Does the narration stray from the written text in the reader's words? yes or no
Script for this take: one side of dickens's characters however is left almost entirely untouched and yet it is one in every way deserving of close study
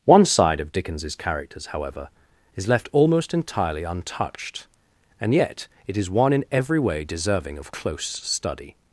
no